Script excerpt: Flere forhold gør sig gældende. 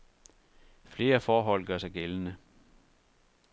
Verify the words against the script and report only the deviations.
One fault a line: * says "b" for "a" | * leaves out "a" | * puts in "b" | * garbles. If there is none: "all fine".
all fine